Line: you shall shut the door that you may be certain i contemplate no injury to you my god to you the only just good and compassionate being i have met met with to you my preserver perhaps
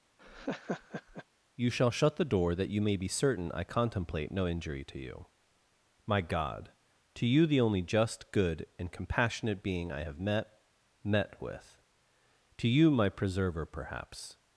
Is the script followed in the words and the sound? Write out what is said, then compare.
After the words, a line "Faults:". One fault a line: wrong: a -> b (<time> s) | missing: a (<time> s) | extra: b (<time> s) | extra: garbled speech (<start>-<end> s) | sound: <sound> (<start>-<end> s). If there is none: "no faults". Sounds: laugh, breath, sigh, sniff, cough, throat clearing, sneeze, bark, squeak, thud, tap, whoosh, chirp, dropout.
you shall shut the door that you may be certain i contemplate no injury to you my god to you the only just good and compassionate being i have met met with to you my preserver perhaps
Faults:
sound: laugh (0.2-1.3 s)